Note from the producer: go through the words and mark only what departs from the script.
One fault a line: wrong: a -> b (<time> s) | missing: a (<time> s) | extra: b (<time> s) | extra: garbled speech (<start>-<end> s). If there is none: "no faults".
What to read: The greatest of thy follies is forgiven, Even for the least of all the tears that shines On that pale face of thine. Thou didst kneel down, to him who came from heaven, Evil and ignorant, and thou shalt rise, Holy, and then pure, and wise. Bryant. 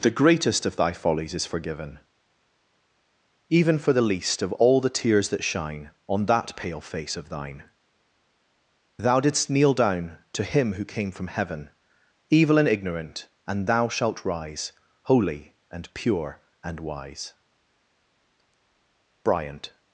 wrong: shines -> shine (5.4 s)
missing: then (15.9 s)